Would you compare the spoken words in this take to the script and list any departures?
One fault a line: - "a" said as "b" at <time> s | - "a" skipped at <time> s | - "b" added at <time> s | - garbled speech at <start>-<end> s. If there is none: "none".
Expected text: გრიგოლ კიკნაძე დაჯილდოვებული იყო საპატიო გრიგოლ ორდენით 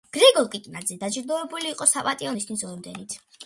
- "გრიგოლ" said as "ნიშნის" at 2.4 s